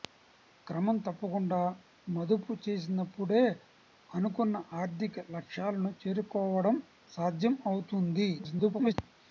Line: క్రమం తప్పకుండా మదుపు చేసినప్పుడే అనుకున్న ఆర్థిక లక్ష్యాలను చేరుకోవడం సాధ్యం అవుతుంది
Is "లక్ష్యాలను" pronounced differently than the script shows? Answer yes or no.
no